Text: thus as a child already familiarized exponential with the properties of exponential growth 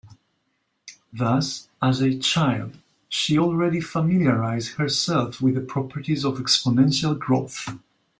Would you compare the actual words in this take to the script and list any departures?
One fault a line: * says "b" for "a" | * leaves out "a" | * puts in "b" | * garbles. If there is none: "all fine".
* puts in "she"
* says "herself" for "exponential"